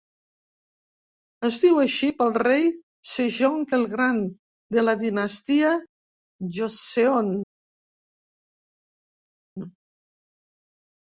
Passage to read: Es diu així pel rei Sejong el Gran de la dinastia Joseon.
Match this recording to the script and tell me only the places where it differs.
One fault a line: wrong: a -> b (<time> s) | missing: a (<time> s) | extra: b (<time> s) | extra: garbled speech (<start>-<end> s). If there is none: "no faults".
no faults